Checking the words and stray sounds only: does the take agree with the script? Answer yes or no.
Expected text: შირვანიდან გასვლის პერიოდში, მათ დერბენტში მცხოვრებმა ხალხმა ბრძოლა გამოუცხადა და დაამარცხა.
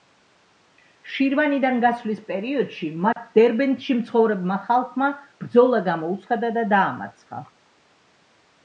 no